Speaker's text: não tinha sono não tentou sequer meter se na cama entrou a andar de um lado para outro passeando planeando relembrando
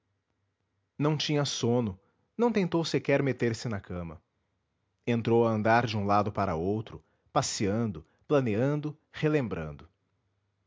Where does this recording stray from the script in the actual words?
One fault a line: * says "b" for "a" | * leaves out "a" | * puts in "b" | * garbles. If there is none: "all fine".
all fine